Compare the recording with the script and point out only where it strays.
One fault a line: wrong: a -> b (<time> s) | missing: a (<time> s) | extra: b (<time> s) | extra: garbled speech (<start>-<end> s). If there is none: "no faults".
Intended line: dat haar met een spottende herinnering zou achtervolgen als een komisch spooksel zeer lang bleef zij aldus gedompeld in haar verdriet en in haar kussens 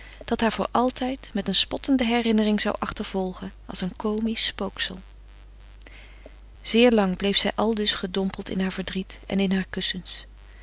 extra: voor altijd (0.5 s)